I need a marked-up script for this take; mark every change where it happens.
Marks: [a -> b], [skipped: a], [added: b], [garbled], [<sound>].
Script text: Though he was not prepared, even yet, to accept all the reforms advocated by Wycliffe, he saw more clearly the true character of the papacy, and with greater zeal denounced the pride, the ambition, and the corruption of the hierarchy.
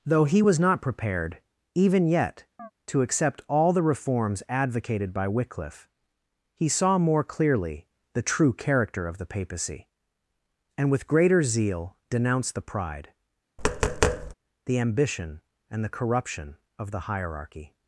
Though he was not prepared, even yet, [chirp] to accept all the reforms advocated by Wycliffe, he saw more clearly the true character of the papacy, and with greater zeal denounced the pride, [tap] the ambition, and the corruption of the hierarchy.